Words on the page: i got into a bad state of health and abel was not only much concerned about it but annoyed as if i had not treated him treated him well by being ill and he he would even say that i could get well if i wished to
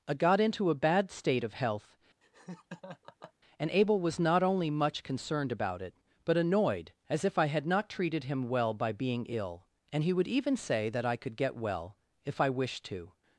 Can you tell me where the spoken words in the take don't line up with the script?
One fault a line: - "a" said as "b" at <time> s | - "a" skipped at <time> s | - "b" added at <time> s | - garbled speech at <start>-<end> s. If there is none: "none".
- "treated him" skipped at 8.5 s
- "he" skipped at 10.1 s